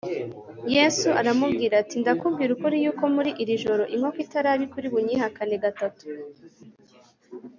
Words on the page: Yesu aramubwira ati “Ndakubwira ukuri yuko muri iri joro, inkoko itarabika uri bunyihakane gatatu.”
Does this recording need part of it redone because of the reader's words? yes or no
no